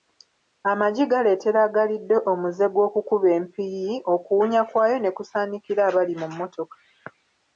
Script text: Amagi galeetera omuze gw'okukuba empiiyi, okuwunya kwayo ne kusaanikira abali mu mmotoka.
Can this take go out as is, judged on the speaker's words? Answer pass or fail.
fail